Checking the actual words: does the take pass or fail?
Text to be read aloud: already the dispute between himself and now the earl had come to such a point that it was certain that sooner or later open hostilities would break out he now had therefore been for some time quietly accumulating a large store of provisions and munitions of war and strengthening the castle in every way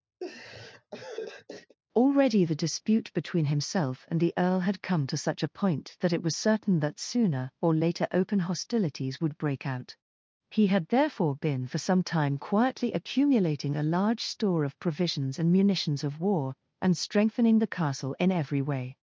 fail